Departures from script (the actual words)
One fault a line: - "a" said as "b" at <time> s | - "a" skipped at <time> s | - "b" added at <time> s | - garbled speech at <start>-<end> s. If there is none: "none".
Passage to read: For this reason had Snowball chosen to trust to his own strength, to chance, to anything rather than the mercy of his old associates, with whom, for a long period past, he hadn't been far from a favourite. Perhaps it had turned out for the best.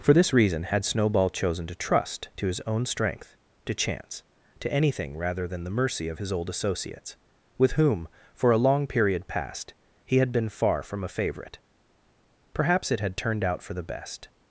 - "hadn't" said as "had" at 10.2 s